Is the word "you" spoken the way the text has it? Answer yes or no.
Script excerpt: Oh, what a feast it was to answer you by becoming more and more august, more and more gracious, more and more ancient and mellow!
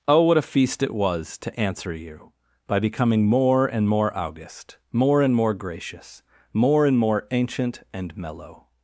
yes